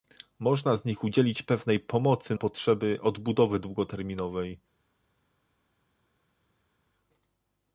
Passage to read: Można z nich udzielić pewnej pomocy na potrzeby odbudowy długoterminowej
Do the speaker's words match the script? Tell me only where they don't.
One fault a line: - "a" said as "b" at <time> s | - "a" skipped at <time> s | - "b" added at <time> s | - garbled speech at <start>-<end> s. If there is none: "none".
- "na" skipped at 2.4 s